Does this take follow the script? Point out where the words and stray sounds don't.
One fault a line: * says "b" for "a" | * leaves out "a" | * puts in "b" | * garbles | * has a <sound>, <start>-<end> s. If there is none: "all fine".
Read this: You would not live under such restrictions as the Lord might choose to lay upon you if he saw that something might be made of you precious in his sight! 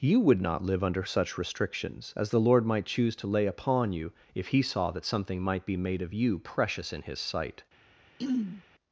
* has a throat clearing, 8.2-8.6 s